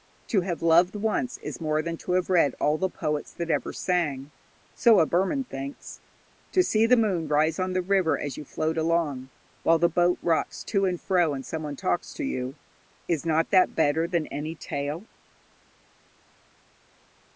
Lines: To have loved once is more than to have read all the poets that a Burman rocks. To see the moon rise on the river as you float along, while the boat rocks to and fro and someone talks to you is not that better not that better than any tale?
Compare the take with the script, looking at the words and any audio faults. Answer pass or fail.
fail